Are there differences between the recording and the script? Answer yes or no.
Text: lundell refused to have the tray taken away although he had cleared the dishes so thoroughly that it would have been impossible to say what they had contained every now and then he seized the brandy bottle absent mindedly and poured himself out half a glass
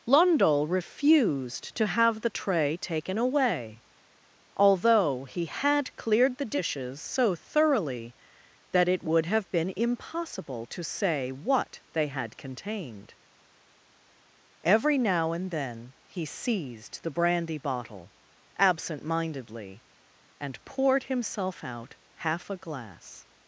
no